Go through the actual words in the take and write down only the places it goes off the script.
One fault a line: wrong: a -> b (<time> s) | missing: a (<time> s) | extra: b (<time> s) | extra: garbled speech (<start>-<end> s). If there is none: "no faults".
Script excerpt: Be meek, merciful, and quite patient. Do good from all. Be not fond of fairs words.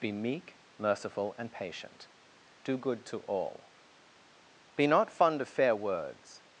missing: quite (1.5 s)
wrong: from -> to (3.0 s)
wrong: fairs -> fair (5.5 s)